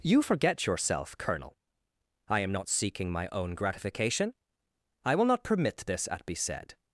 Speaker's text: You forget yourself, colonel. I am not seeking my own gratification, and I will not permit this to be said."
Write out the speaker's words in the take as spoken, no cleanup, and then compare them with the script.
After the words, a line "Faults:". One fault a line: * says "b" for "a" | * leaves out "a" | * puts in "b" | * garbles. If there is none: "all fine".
You forget yourself, colonel. I am not seeking my own gratification, I will not permit this at be said."
Faults:
* leaves out "and"
* says "at" for "to"